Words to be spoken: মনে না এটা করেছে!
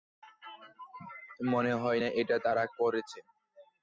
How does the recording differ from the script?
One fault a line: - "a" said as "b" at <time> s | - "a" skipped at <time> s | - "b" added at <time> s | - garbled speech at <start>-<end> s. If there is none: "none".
- "হয়" added at 1.8 s
- "তারা" added at 2.4 s